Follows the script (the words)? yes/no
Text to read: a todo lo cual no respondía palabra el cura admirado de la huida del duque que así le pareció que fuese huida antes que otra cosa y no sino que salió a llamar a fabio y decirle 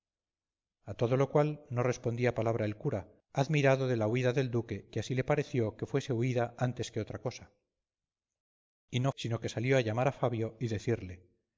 yes